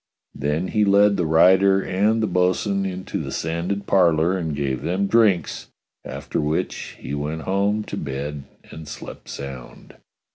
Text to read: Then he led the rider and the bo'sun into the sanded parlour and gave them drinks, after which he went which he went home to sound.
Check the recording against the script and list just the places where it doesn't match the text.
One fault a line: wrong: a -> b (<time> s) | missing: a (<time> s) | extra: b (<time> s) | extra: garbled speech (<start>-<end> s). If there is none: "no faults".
wrong: which he went home to -> home to bed and slept (7.4 s)